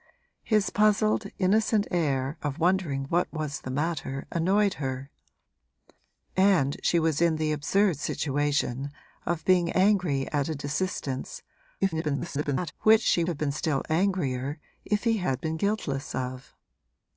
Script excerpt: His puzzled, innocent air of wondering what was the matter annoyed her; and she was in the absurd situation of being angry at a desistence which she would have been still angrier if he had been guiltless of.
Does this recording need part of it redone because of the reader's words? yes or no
yes